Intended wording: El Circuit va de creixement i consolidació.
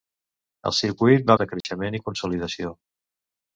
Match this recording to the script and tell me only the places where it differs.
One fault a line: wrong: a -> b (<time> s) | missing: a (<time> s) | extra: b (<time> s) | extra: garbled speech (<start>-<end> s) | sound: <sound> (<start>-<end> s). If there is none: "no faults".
sound: dropout (1.6-1.6 s)